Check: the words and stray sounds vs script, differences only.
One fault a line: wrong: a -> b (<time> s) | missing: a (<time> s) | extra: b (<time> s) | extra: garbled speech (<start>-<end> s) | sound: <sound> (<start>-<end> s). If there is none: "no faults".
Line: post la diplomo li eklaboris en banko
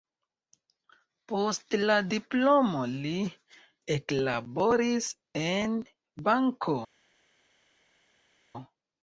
no faults